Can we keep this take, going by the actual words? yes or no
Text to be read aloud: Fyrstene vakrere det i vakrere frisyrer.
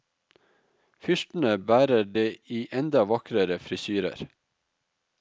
no